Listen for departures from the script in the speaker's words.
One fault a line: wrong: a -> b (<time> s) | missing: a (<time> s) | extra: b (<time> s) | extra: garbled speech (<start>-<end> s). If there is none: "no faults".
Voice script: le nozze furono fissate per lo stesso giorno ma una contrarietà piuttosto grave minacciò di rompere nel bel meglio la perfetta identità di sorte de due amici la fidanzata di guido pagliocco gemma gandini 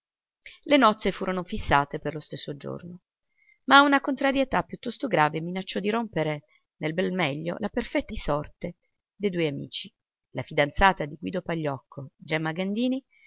missing: identità (8.1 s)